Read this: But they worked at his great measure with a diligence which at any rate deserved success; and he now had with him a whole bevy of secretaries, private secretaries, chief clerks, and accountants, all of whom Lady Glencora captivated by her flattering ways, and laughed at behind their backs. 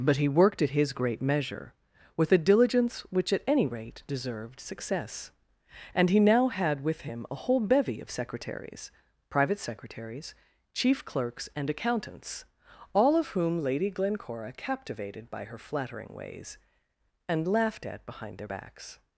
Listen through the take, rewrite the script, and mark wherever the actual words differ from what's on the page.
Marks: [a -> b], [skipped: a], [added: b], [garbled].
But [they -> he] worked at his great measure with a diligence which at any rate deserved success; and he now had with him a whole bevy of secretaries, private secretaries, chief clerks, and accountants, all of whom Lady Glencora captivated by her flattering ways, and laughed at behind their backs.